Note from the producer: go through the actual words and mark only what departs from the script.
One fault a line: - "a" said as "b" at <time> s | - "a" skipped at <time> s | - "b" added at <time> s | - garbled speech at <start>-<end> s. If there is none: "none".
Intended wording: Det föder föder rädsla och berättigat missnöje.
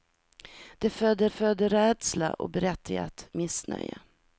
none